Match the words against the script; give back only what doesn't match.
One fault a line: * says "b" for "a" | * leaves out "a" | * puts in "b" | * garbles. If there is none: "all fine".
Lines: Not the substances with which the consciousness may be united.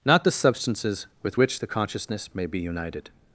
all fine